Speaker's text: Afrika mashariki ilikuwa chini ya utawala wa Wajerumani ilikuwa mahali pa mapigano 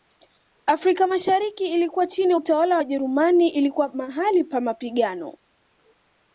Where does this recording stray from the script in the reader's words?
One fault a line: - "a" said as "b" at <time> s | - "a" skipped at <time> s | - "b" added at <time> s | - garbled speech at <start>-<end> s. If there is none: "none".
none